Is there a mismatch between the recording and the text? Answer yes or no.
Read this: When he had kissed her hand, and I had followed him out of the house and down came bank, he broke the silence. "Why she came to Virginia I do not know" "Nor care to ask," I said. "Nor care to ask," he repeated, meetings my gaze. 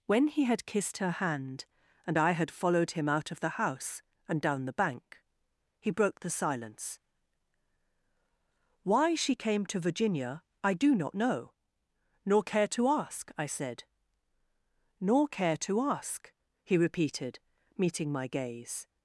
yes